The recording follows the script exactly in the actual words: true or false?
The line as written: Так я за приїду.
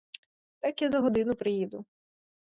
false